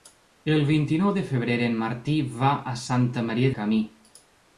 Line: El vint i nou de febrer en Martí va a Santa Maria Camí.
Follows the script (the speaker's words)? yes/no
yes